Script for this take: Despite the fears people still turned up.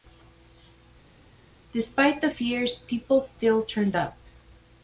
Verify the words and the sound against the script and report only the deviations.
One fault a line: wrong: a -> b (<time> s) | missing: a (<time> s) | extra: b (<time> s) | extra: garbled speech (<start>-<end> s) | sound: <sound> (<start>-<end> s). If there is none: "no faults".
no faults